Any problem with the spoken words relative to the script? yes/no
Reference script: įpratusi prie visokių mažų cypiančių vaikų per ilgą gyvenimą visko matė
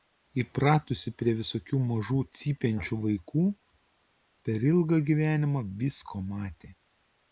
no